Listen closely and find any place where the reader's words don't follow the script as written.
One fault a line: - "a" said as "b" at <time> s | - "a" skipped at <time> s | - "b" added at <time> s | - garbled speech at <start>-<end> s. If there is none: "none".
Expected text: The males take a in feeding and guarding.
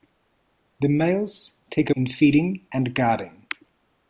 none